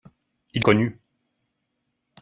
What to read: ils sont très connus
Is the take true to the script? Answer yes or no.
no